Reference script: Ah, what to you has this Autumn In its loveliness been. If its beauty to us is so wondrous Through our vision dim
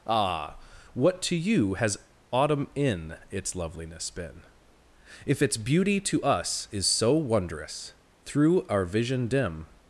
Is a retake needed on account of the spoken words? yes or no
yes